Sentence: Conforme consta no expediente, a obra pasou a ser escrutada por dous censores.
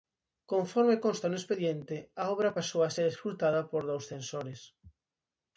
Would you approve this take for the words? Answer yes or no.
yes